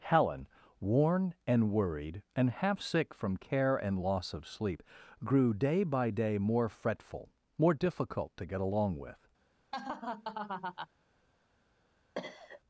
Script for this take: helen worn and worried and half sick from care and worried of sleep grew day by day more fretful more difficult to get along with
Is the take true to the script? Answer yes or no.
no